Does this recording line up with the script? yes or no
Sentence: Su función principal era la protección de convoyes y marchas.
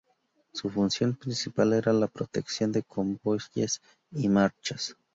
yes